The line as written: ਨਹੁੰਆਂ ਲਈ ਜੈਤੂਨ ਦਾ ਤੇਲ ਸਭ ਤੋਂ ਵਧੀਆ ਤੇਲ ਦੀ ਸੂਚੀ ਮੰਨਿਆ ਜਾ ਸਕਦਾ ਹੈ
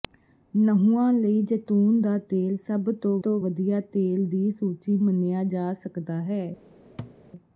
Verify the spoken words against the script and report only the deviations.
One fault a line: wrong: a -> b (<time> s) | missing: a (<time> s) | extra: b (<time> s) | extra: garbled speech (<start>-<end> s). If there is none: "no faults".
extra: ਤੋਂ (3.2 s)